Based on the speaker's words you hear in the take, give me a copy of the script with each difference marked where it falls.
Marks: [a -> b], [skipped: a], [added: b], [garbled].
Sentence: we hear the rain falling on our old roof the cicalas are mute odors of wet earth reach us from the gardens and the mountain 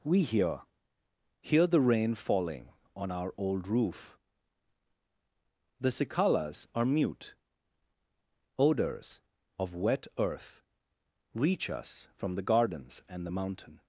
we hear [added: hear] the rain falling on our old roof the cicalas are mute odors of wet earth reach us from the gardens and the mountain